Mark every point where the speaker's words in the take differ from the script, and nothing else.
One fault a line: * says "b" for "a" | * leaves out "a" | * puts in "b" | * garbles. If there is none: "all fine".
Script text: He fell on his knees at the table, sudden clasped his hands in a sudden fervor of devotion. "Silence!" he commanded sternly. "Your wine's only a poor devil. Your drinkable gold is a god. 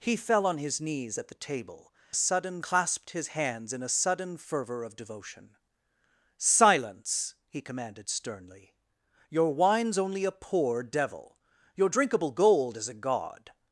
all fine